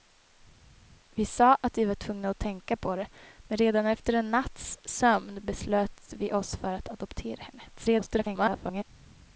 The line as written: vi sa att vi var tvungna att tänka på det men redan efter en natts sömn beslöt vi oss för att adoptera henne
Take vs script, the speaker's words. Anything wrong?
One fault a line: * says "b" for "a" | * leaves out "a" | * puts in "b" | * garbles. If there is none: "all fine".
* garbles